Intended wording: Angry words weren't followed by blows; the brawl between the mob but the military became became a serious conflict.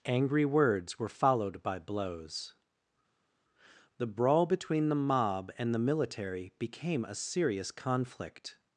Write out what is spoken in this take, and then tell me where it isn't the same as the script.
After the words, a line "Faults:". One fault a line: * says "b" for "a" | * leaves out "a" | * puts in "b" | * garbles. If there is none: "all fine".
Angry words were followed by blows; the brawl between the mob and the military became a serious conflict.
Faults:
* says "were" for "weren't"
* says "and" for "but"
* leaves out "became"